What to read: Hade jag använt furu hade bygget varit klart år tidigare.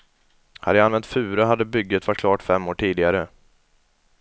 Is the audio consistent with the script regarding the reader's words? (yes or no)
no